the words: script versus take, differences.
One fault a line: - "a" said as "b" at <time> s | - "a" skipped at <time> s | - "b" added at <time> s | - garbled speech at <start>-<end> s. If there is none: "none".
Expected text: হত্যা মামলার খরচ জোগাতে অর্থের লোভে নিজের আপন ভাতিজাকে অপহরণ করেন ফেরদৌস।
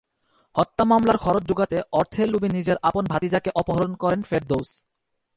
none